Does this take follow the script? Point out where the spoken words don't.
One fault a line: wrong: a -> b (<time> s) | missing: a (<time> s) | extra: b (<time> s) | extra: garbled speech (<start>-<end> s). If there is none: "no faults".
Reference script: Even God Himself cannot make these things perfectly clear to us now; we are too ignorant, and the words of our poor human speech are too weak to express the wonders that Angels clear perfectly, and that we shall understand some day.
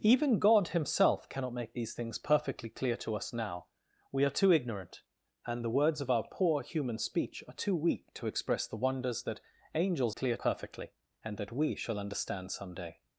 no faults